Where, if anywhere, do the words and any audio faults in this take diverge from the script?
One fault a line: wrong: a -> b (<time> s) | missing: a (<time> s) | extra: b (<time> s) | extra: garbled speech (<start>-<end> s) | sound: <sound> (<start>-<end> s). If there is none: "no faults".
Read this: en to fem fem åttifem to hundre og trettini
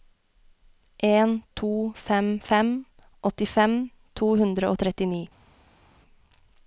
no faults